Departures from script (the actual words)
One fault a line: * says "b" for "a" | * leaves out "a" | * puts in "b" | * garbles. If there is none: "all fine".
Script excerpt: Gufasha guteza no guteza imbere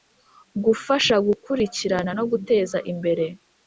* says "gukurikirana" for "guteza"